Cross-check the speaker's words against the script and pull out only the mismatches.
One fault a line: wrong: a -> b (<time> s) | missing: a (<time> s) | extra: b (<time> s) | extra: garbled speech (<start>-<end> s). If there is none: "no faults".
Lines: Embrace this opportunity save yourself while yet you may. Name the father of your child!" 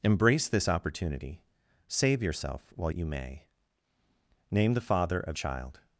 missing: yet (2.9 s)
missing: your (5.4 s)